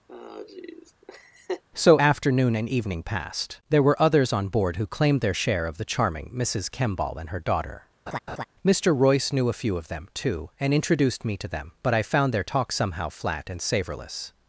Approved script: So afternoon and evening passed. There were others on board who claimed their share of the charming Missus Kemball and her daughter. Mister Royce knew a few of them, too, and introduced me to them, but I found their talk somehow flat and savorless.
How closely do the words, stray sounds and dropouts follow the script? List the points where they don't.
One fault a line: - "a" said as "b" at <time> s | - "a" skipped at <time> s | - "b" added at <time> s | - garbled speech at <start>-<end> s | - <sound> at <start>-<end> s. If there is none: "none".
- laugh at 0.1-1.6 s
- laugh at 8.1-8.4 s